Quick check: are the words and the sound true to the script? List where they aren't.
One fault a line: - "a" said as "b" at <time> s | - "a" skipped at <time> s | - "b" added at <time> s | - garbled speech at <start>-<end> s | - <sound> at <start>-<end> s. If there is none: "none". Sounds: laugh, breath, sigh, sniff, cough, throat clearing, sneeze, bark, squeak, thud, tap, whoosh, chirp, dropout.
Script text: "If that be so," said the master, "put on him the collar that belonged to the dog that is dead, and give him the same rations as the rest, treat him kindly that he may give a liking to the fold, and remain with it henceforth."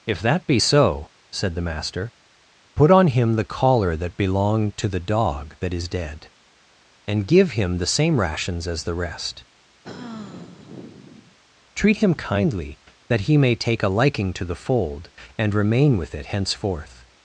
- sigh at 9.8-11.4 s
- "give" said as "take" at 13.6 s